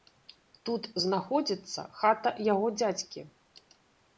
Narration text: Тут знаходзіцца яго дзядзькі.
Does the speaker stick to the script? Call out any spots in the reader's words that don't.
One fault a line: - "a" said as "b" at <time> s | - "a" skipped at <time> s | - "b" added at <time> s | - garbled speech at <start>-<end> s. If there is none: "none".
- "хата" added at 2.0 s